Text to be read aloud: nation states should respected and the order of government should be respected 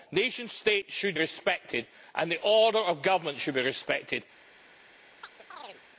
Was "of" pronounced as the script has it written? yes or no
yes